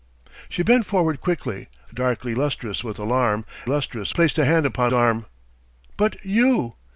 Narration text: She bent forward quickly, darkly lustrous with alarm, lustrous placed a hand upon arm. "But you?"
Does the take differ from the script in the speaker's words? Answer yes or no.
no